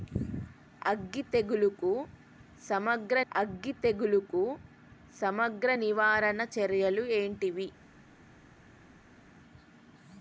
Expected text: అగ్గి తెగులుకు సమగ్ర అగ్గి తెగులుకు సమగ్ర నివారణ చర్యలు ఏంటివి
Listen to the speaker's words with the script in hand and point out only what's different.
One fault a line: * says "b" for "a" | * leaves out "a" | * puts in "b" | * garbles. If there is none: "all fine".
all fine